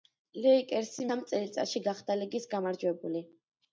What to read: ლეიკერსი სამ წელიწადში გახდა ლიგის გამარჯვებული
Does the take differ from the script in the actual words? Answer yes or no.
no